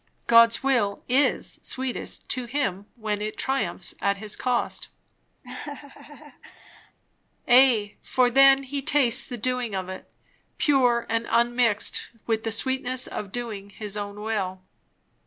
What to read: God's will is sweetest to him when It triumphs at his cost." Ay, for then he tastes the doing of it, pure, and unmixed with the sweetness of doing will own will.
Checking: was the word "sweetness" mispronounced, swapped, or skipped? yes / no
no